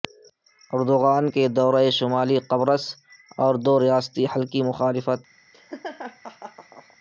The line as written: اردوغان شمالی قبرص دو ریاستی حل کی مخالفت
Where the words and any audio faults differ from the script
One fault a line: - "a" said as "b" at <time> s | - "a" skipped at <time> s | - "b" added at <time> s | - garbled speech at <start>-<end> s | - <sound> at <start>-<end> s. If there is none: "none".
- "کے دورہ" added at 1.3 s
- "اور" added at 3.4 s
- laugh at 5.5-7.0 s